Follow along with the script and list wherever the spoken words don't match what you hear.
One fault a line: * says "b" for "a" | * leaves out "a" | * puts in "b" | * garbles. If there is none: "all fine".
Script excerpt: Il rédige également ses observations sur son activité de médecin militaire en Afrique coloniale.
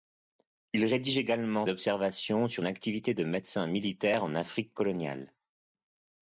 * leaves out "ses"
* leaves out "son"